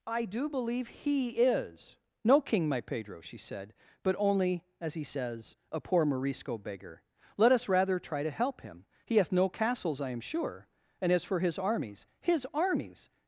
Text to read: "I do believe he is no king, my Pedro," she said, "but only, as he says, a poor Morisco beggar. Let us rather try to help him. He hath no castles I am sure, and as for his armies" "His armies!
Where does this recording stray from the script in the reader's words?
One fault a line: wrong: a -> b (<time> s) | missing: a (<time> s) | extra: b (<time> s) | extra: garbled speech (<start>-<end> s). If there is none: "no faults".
no faults